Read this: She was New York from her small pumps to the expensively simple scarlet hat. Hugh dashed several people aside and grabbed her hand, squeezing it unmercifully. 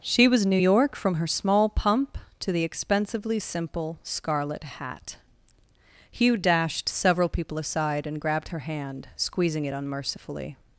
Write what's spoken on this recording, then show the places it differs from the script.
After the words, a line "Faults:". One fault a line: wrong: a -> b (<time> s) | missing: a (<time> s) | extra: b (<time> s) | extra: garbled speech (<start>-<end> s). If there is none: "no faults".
She was New York from her small pump to the expensively simple scarlet hat. Hugh dashed several people aside and grabbed her hand, squeezing it unmercifully.
Faults:
wrong: pumps -> pump (1.7 s)